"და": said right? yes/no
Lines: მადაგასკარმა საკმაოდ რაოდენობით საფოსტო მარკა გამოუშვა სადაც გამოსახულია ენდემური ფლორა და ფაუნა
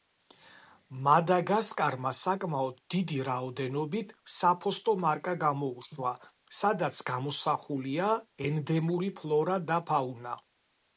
yes